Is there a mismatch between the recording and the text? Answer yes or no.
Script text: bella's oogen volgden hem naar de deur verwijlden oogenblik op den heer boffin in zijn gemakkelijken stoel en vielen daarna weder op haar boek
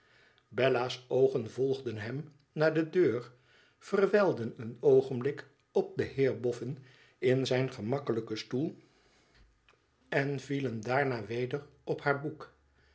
yes